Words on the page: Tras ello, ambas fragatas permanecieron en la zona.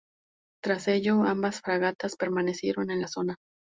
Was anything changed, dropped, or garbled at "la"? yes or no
no